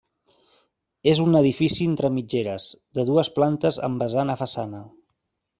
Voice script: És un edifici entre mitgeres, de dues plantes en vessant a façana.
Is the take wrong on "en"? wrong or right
wrong